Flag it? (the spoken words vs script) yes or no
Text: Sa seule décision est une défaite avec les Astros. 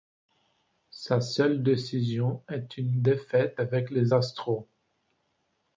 no